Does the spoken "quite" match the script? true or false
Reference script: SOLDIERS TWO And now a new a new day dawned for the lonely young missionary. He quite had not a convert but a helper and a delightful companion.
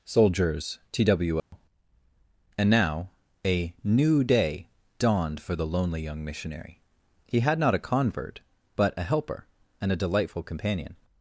false